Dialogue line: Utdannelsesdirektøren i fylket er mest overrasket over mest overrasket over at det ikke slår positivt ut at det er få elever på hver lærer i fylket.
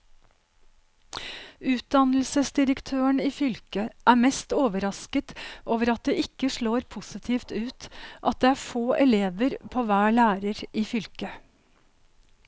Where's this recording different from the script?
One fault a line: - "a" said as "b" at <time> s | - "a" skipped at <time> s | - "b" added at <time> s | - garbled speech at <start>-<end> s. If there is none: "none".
- "mest overrasket over" skipped at 5.9 s